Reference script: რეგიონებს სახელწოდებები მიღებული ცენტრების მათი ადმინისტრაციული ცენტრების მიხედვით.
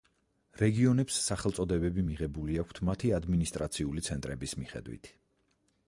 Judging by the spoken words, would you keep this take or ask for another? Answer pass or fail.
fail